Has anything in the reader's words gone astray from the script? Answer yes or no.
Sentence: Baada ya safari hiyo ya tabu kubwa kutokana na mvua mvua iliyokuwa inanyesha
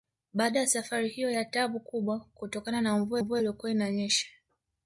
no